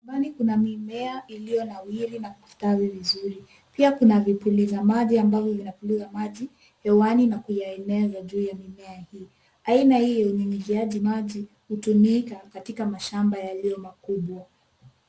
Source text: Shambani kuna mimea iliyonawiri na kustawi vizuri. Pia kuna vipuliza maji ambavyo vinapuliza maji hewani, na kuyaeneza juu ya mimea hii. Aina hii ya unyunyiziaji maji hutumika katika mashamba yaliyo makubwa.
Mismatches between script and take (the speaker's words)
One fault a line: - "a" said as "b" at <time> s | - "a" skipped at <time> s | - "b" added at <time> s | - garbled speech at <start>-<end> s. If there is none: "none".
none